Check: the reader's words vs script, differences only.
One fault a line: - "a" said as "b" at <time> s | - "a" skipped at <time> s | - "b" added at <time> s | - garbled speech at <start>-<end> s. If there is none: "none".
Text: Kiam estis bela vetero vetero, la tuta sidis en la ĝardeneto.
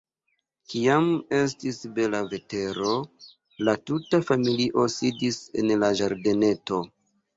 - "vetero" skipped at 2.9 s
- "familio" added at 4.3 s